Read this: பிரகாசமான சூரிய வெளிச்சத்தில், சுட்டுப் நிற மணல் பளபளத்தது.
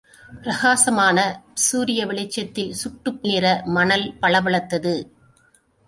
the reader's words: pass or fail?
pass